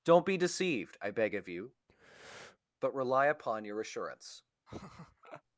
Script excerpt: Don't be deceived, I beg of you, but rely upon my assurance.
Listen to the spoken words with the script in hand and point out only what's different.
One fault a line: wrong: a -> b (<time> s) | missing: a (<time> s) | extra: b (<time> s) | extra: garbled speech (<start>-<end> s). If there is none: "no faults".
wrong: my -> your (3.6 s)